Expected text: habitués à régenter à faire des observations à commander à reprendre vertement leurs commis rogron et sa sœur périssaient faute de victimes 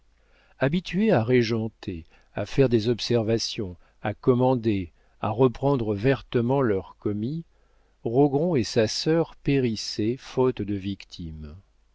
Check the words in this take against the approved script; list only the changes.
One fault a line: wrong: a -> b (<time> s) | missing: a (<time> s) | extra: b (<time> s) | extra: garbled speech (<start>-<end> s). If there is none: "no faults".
no faults